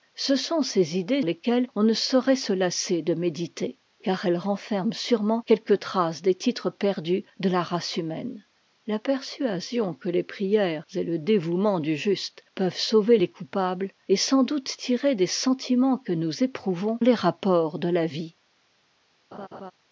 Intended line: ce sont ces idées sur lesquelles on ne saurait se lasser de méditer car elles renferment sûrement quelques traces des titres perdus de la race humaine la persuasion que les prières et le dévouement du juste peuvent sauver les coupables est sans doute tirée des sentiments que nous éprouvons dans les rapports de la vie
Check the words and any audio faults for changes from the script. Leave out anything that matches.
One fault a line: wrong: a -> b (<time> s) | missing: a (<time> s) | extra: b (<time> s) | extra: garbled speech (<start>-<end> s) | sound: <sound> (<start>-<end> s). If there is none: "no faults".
missing: sur (1.2 s)
missing: dans (17.0 s)
sound: laugh (19.3-19.7 s)